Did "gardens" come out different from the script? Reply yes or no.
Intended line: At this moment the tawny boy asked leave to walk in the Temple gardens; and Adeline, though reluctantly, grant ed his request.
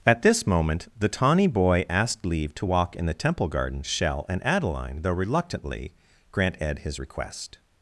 yes